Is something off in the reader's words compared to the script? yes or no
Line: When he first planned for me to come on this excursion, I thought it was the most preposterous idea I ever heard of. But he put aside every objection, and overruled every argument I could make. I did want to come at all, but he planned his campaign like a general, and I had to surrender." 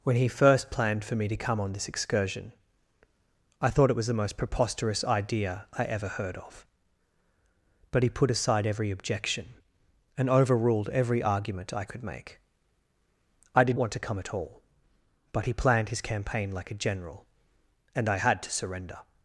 no